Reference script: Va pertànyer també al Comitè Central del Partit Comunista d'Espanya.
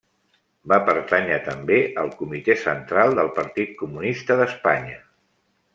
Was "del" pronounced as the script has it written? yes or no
yes